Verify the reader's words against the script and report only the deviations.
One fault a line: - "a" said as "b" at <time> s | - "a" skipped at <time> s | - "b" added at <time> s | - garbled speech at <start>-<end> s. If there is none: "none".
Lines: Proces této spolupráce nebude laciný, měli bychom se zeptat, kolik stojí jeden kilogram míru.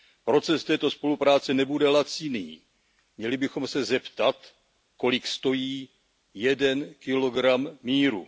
none